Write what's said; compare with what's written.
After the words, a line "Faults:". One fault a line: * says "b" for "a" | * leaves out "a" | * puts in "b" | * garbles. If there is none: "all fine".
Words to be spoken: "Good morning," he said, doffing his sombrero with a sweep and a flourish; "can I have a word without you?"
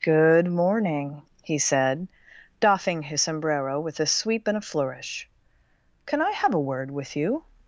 "Good morning," he said, doffing his sombrero with a sweep and a flourish; "can I have a word with you?"
Faults:
* says "with" for "without"